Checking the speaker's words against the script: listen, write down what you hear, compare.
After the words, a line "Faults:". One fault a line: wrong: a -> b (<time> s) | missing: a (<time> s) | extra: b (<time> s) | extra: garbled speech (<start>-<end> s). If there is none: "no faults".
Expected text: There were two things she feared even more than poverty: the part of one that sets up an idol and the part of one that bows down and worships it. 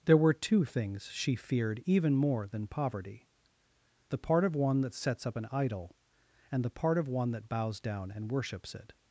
There were two things she feared even more than poverty: the part of one that sets up an idol and the part of one that bows down and worships it.
Faults:
no faults